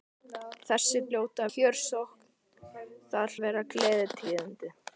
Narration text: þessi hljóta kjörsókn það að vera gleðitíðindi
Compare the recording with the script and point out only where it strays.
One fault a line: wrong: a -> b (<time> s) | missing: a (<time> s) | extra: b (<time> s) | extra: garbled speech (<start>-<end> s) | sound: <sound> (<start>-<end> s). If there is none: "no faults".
no faults